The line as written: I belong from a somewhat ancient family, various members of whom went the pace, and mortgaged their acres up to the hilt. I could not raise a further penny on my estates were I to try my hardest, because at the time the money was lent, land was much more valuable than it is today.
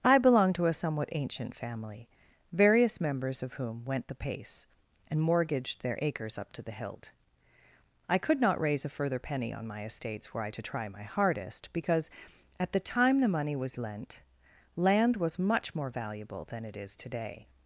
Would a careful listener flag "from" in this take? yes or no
yes